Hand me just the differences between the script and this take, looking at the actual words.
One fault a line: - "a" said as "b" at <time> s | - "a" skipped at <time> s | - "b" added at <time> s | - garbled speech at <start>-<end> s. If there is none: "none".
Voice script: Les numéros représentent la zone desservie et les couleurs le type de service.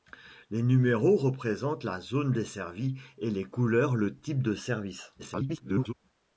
- garbled speech at 5.2-5.9 s